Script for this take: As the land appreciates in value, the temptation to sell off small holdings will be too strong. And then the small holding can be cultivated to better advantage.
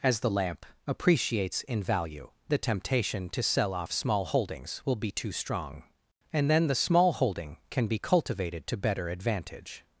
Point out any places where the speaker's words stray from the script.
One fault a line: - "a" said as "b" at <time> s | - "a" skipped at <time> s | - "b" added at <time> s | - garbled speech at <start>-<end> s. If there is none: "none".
- "land" said as "lamp" at 0.3 s